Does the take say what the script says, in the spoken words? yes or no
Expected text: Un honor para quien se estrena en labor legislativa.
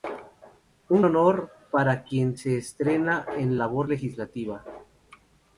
yes